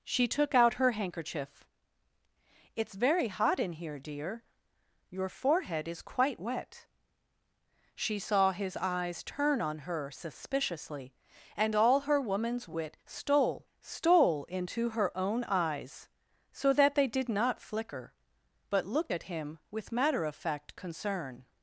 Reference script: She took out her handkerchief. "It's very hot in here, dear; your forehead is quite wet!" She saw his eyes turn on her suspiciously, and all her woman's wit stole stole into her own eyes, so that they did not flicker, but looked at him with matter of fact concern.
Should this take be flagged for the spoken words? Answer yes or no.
no